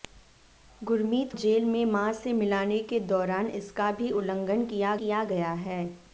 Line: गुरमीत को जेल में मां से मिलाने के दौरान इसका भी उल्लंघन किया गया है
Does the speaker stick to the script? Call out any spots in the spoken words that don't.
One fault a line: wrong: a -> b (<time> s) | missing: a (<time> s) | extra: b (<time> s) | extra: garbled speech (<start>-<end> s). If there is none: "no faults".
missing: को (1.3 s)
extra: किया (5.0 s)